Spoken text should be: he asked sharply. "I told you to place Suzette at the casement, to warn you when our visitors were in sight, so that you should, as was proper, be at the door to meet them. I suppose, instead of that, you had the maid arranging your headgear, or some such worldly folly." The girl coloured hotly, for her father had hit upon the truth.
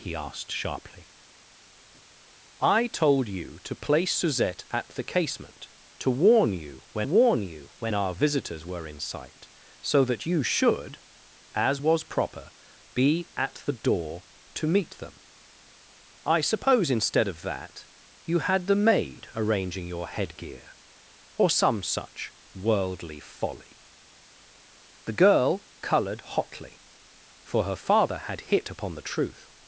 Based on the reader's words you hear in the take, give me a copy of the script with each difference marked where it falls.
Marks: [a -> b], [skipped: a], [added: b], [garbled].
he asked sharply. "I told you to place Suzette at the casement, to warn you when [added: warn you when] our visitors were in sight, so that you should, as was proper, be at the door to meet them. I suppose, instead of that, you had the maid arranging your headgear, or some such worldly folly." The girl coloured hotly, for her father had hit upon the truth.